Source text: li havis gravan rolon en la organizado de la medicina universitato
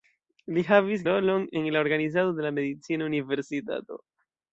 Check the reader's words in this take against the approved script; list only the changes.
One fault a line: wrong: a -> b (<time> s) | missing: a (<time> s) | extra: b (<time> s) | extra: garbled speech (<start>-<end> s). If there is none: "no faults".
missing: gravan (1.0 s)